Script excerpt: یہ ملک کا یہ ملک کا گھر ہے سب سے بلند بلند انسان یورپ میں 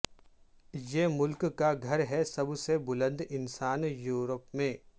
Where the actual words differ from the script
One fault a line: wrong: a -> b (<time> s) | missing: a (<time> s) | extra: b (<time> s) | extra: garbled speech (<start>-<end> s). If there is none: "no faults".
missing: یہ ملک کا (1.7 s)
missing: بلند (3.2 s)